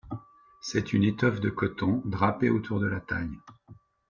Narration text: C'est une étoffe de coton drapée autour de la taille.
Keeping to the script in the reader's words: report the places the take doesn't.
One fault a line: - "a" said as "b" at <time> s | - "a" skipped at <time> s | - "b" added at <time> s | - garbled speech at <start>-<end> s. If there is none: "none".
none